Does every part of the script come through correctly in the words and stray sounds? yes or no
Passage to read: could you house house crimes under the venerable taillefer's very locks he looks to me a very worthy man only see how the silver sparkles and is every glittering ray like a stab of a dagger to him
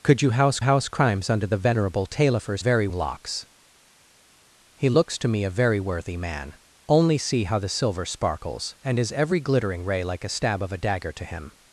yes